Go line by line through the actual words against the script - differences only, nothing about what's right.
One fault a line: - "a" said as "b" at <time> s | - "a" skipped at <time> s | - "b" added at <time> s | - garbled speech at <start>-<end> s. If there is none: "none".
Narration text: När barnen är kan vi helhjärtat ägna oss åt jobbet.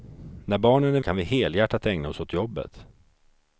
none